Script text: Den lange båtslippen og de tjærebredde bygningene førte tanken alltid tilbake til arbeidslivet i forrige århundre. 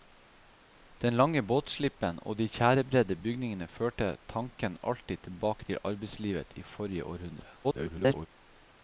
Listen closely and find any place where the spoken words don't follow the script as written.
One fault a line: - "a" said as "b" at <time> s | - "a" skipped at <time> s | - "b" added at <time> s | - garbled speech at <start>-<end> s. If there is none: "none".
- garbled speech at 7.6-8.3 s